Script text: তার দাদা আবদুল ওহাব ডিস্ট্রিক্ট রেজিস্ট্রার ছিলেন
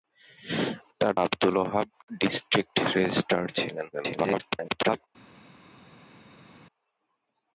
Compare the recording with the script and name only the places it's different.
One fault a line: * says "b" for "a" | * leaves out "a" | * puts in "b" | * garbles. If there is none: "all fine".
* leaves out "দাদা"
* garbles